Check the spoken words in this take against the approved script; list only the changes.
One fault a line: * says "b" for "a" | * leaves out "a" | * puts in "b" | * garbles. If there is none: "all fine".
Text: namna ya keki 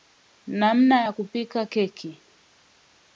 * puts in "kupika"